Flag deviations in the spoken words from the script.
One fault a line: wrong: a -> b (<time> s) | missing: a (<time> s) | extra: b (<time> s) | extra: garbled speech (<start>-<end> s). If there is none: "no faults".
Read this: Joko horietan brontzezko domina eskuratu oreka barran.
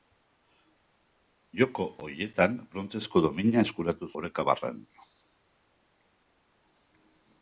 no faults